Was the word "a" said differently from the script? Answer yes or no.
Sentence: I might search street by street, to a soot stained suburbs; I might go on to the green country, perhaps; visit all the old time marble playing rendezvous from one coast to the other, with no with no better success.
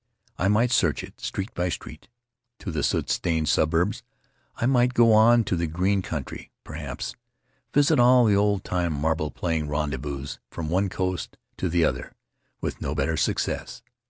yes